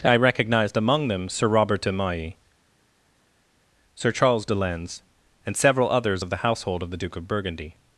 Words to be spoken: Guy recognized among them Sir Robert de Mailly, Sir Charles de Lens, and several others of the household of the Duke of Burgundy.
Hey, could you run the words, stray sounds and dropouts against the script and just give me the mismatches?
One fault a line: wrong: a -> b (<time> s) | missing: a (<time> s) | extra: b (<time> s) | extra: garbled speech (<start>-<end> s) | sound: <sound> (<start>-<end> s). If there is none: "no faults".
wrong: Guy -> I (0.0 s)